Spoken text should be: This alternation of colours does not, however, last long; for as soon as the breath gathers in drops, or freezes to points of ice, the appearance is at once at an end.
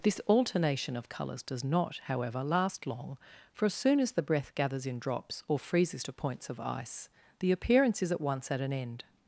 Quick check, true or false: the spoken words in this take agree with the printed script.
true